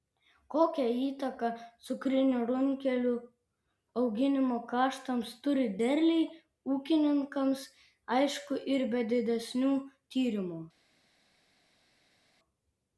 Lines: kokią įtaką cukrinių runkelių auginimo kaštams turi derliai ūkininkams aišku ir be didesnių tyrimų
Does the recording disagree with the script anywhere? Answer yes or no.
no